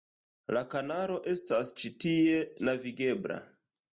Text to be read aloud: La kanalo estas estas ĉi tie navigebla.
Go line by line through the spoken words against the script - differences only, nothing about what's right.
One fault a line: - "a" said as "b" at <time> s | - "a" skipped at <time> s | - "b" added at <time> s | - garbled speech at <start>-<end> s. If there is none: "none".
- "estas" skipped at 1.7 s